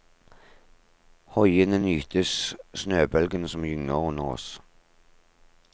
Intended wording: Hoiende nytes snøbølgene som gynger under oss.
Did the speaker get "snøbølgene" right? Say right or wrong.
right